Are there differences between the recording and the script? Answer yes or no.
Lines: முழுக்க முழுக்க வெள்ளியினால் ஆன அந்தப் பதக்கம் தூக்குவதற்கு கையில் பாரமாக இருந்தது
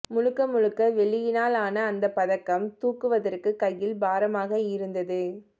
no